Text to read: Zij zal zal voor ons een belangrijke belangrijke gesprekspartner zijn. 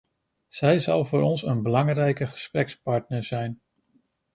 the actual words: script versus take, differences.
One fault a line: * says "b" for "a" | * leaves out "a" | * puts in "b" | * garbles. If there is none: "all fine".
* leaves out "zal"
* leaves out "belangrijke"